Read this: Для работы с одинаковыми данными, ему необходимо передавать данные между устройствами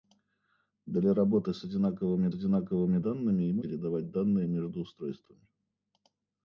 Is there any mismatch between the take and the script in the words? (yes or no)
yes